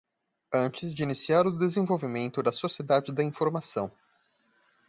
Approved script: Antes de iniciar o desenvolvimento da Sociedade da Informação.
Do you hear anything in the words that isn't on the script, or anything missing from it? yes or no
no